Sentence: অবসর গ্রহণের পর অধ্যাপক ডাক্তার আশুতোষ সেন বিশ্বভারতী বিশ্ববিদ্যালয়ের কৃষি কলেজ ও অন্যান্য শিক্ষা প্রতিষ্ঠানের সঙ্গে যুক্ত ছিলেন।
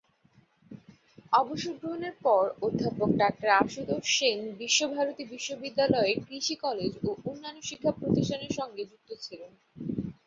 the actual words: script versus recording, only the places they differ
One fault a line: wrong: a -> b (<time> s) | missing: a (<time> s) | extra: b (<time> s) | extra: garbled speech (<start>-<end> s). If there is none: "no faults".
no faults